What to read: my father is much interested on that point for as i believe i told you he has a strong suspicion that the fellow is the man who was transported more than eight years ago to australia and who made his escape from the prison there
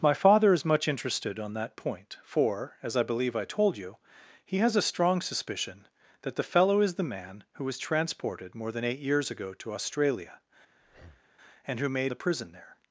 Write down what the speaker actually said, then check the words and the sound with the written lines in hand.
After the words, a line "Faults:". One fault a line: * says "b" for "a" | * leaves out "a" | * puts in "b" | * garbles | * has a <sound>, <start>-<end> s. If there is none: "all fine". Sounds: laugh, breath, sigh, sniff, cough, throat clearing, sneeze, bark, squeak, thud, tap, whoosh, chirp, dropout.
my father is much interested on that point for as i believe i told you he has a strong suspicion that the fellow is the man who was transported more than eight years ago to australia and who made the prison there
Faults:
* has a breath, 10.8-11.3 s
* leaves out "his escape from"